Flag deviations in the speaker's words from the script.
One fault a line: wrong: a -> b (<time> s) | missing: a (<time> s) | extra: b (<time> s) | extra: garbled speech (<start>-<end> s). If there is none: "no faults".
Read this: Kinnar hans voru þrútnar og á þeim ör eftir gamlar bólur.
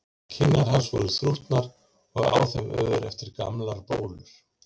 no faults